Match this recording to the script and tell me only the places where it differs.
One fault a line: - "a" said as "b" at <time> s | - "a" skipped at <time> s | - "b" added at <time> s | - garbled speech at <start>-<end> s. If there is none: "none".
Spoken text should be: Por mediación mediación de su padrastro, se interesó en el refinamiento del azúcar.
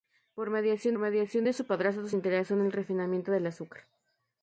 none